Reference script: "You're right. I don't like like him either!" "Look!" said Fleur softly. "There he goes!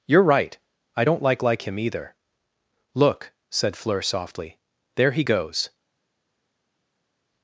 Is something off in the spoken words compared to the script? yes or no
no